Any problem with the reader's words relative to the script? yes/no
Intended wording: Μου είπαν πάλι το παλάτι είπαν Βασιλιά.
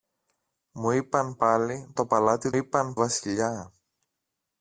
no